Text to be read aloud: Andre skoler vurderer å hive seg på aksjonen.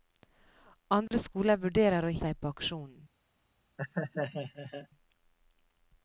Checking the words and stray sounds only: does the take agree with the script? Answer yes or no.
no